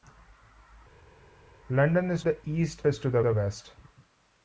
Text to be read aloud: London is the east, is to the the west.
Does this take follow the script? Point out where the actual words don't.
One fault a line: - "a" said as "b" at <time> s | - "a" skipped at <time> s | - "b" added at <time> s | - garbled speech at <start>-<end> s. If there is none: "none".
none